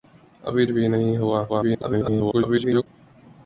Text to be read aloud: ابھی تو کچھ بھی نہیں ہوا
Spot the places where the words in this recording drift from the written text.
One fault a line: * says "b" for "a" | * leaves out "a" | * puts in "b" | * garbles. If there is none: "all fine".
* leaves out "تو کچھ"
* garbles